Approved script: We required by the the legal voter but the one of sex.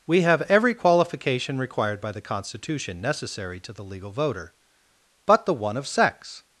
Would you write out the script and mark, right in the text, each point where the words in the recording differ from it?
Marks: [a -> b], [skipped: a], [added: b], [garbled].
We [added: have every qualification] required by the [added: constitution necessary to] the legal voter but the one of sex.